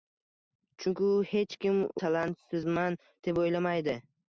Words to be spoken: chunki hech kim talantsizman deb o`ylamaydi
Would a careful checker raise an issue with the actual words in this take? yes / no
no